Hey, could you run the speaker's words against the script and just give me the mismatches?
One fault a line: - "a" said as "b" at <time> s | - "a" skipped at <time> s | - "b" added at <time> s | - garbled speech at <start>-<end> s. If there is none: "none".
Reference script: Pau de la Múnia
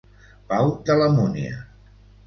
none